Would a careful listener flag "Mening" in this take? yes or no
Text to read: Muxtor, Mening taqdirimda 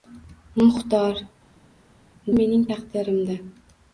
no